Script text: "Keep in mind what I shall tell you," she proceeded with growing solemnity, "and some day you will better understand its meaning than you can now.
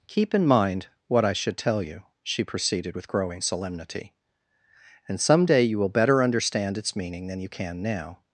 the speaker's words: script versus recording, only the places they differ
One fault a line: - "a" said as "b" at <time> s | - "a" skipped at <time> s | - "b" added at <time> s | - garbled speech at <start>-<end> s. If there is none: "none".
- "shall" said as "should" at 1.3 s